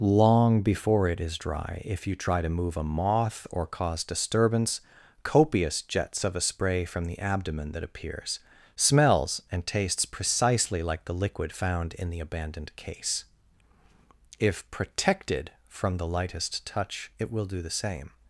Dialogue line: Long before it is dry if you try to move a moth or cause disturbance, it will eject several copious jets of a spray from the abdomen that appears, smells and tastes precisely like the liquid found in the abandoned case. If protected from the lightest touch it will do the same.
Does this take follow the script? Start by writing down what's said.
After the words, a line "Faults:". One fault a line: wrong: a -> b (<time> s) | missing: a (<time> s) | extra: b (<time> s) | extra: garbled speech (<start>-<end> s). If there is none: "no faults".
Long before it is dry if you try to move a moth or cause disturbance, copious jets of a spray from the abdomen that appears, smells and tastes precisely like the liquid found in the abandoned case. If protected from the lightest touch it will do the same.
Faults:
missing: it will eject several (4.8 s)